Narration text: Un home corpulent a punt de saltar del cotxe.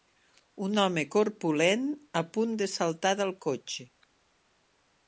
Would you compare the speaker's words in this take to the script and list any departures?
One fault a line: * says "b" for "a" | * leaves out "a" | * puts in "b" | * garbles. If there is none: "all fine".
all fine